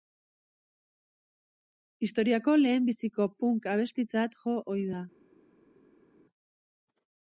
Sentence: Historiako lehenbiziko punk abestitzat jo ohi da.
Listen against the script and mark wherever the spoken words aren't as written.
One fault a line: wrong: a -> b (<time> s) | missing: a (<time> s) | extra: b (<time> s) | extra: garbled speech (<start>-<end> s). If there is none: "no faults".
no faults